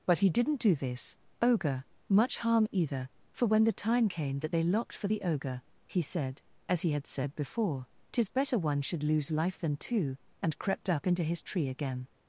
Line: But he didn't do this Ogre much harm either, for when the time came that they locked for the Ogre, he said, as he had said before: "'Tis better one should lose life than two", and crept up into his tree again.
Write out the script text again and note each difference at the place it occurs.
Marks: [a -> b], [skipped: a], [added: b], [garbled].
But he didn't do this Ogre much harm either, for when the time came that they locked for the Ogre, he said, as he had said before: "'Tis better one should lose life than two", and crept up into his tree again.